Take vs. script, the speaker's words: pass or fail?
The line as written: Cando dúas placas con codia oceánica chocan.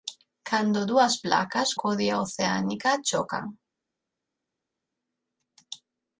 fail